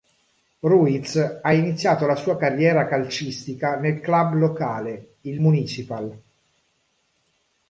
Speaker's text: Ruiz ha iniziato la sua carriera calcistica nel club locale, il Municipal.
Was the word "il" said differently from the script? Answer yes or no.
no